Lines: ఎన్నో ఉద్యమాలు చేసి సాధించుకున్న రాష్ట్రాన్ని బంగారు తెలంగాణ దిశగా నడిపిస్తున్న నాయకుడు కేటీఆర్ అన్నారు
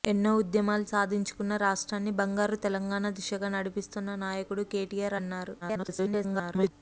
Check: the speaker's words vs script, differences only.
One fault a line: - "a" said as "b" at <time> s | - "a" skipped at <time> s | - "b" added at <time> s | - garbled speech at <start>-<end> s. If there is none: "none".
- "చేసి" skipped at 0.8 s
- garbled speech at 5.6-6.7 s